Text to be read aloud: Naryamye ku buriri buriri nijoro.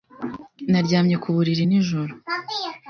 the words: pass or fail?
fail